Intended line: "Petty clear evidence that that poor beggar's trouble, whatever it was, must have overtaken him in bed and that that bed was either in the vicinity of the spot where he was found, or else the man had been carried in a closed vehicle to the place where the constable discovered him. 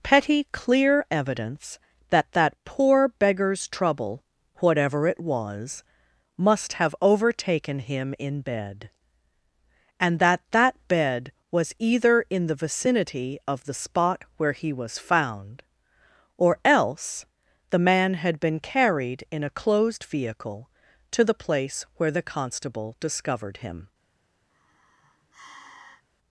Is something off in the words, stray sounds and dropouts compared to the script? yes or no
yes